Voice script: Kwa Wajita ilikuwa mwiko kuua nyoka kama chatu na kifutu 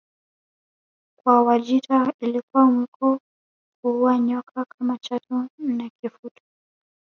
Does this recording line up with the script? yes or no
yes